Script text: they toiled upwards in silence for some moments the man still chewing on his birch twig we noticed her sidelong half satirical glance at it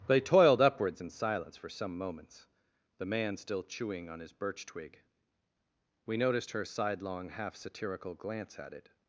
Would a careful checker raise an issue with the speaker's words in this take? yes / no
no